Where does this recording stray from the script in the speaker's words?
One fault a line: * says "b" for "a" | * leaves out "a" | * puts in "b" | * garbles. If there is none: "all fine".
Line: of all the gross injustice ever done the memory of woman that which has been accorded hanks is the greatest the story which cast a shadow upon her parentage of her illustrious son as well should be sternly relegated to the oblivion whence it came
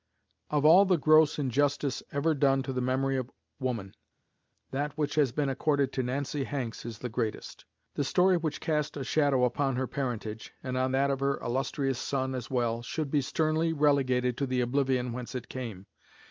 * puts in "to"
* puts in "to nancy"
* puts in "and on that"